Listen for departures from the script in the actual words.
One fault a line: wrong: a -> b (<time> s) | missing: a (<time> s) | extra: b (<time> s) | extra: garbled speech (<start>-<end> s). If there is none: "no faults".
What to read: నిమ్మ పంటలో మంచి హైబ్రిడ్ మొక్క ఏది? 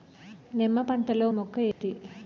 missing: మంచి హైబ్రిడ్ (1.3 s)